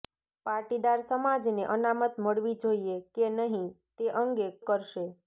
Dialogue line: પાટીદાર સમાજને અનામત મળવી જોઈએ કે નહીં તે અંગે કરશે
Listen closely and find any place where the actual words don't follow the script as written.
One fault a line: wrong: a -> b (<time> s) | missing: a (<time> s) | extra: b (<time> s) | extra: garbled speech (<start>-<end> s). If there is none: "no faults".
no faults